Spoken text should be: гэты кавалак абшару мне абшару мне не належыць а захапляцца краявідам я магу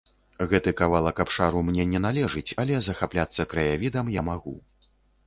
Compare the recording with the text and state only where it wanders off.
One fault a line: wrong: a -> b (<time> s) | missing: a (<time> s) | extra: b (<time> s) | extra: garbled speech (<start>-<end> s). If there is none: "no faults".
missing: абшару мне (1.9 s)
wrong: а -> але (2.6 s)